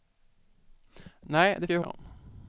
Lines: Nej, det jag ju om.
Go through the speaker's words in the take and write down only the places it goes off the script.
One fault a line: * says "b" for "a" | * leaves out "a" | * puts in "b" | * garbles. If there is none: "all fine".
all fine